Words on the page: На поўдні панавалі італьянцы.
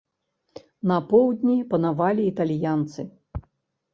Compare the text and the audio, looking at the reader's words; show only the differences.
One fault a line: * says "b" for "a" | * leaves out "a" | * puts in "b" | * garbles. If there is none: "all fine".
all fine